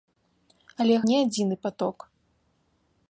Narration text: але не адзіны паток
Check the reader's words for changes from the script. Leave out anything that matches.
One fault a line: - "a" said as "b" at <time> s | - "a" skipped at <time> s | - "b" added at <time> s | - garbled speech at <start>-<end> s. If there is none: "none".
none